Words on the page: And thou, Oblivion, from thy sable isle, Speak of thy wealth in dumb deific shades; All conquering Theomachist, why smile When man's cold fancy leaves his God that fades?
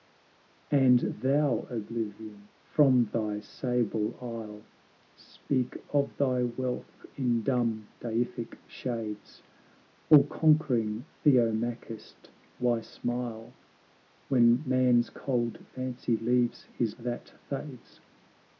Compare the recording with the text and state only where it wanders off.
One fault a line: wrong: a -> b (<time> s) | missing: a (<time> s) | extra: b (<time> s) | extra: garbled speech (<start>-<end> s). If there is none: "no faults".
missing: God (16.9 s)